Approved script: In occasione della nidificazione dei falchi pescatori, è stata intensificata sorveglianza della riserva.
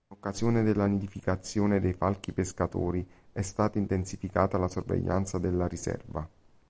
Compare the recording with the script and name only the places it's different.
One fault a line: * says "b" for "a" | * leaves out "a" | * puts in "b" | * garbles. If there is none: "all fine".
* puts in "la"